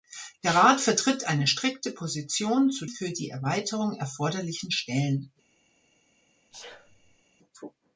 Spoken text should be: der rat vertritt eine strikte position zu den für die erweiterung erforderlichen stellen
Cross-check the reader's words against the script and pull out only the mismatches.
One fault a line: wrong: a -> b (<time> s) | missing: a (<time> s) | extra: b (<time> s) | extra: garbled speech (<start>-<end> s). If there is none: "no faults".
missing: den (2.9 s)